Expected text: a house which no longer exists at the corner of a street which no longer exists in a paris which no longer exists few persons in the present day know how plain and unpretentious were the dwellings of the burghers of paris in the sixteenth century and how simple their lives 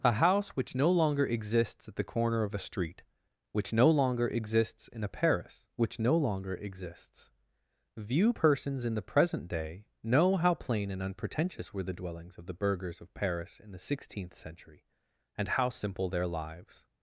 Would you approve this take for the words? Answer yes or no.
no